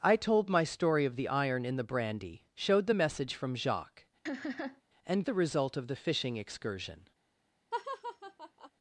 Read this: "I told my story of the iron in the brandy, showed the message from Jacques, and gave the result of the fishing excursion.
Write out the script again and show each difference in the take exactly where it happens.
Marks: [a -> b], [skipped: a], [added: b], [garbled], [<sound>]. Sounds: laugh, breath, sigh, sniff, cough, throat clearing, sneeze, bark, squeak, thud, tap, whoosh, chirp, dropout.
"I told my story of the iron in the brandy, showed the message from Jacques, [laugh] and [skipped: gave] the result of the fishing excursion. [laugh]